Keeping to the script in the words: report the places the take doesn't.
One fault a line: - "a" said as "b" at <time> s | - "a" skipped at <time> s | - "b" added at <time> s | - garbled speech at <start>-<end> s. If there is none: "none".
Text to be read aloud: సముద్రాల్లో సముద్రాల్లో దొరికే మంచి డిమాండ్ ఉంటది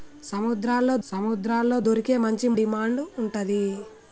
none